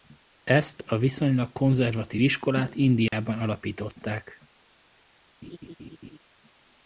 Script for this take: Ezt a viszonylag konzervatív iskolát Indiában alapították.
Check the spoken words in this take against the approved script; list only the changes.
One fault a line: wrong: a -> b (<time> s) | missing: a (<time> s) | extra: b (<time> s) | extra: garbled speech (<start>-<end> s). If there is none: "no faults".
no faults